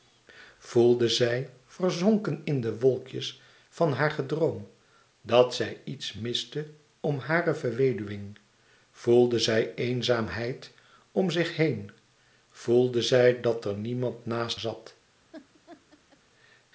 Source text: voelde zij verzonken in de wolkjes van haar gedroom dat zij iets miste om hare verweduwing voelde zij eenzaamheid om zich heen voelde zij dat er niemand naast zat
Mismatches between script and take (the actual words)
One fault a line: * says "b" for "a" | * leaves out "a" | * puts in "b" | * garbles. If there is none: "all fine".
all fine